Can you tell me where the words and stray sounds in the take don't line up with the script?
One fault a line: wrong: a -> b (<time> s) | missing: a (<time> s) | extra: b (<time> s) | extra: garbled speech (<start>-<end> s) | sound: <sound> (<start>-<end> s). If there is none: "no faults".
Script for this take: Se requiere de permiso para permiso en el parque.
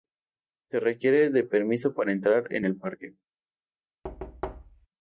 wrong: permiso -> entrar (2.1 s)
sound: thud (4.0-4.9 s)